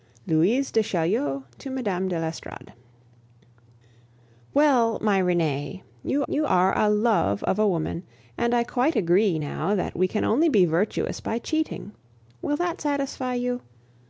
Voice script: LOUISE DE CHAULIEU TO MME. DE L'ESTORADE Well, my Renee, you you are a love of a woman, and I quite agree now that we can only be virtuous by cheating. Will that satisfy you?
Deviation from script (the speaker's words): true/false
false